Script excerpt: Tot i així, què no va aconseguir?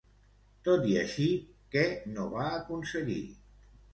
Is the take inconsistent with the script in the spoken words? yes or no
no